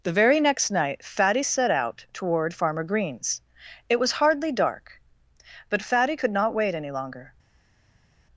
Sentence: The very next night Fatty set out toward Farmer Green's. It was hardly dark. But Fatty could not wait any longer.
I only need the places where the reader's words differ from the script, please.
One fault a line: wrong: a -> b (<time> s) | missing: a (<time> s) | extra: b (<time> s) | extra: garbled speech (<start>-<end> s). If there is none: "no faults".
no faults